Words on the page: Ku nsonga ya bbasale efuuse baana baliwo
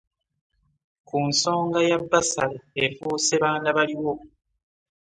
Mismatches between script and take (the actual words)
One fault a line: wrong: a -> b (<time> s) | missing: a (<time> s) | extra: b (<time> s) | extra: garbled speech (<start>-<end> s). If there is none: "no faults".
no faults